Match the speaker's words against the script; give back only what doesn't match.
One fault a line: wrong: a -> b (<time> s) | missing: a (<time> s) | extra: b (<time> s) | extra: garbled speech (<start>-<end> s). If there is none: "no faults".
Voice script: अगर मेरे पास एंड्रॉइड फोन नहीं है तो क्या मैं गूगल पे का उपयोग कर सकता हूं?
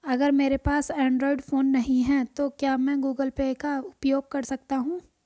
no faults